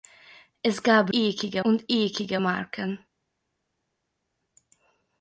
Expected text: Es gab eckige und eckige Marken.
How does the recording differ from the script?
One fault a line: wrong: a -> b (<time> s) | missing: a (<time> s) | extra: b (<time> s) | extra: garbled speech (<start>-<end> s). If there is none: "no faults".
no faults